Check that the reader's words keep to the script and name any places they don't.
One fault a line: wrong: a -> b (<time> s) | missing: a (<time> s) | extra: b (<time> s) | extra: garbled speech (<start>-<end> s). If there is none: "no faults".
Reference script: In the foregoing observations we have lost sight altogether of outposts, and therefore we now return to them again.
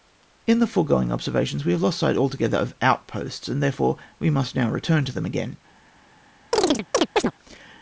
extra: must (4.3 s)